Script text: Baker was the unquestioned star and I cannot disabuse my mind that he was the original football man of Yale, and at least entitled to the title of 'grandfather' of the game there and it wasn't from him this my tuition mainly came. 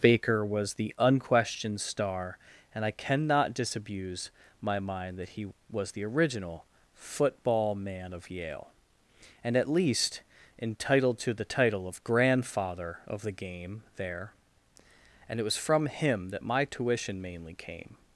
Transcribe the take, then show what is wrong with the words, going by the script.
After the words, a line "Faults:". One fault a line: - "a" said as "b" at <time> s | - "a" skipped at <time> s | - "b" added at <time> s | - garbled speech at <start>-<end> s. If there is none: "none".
Baker was the unquestioned star and I cannot disabuse my mind that he was the original football man of Yale, and at least entitled to the title of 'grandfather' of the game there and it was from him that my tuition mainly came.
Faults:
- "wasn't" said as "was" at 15.4 s
- "this" said as "that" at 16.3 s